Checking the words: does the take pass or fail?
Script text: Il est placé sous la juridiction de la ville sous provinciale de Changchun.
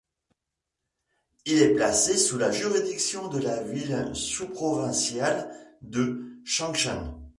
pass